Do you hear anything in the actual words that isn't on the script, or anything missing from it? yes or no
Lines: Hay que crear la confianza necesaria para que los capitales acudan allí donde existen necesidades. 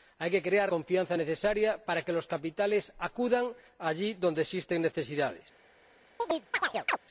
yes